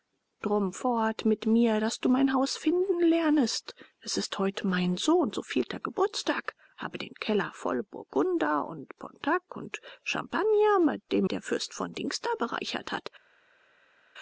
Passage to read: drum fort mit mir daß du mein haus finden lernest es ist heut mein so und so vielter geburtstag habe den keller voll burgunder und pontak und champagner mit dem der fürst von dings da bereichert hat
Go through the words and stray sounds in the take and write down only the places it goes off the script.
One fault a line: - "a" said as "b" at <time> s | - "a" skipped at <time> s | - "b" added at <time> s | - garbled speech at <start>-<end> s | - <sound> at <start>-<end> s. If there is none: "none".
none